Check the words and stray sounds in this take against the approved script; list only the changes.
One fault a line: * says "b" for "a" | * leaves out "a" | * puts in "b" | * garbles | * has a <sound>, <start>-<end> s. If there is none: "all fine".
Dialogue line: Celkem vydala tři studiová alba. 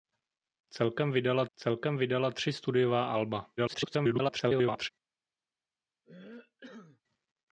* puts in "celkem vydala"
* garbles
* has a cough, 6.0-7.0 s